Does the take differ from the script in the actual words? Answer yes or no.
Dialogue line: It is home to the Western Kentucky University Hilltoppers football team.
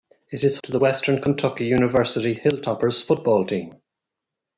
yes